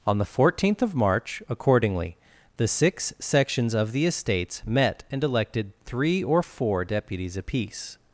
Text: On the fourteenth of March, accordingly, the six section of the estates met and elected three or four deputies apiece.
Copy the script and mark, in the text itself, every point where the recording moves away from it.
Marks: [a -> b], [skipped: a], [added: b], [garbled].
On the fourteenth of March, accordingly, the six [section -> sections] of the estates met and elected three or four deputies apiece.